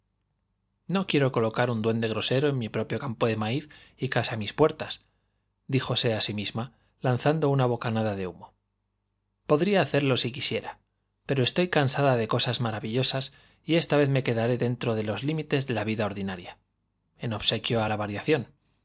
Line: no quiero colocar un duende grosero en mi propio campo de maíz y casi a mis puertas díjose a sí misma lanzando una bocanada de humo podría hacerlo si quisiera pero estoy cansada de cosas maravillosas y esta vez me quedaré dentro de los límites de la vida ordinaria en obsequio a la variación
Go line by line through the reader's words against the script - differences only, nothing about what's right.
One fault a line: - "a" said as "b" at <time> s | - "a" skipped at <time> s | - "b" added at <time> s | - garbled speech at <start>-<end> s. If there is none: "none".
none